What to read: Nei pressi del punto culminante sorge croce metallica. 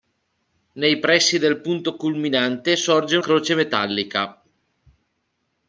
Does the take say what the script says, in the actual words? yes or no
yes